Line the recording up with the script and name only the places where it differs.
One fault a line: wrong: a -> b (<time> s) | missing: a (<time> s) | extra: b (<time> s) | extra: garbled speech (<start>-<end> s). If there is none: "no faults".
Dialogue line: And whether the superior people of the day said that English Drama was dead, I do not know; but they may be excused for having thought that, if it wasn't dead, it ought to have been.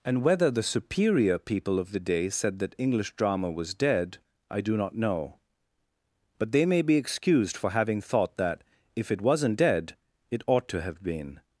no faults